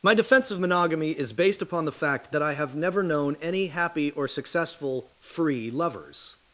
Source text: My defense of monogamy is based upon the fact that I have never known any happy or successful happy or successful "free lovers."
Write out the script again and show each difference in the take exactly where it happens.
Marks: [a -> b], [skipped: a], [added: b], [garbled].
My defense of monogamy is based upon the fact that I have never known any happy or successful [skipped: happy or successful] "free lovers."